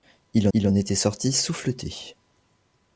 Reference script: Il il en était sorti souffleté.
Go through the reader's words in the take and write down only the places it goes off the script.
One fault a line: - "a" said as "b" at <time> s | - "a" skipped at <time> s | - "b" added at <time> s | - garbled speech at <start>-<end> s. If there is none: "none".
none